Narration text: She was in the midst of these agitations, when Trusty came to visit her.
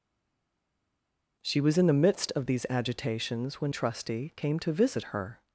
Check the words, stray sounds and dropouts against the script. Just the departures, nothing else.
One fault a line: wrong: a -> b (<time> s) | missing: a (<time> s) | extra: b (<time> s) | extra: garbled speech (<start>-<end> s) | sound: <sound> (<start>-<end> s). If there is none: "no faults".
no faults